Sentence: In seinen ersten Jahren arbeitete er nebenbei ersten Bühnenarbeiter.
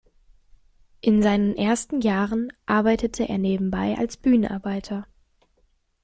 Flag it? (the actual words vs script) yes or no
yes